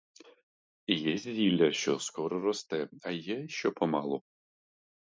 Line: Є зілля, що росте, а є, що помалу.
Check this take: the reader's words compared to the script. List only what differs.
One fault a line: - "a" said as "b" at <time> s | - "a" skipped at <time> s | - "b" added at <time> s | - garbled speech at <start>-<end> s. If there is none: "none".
- "скоро" added at 2.0 s